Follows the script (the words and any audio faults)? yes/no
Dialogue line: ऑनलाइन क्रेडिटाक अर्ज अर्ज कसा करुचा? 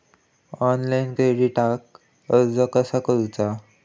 no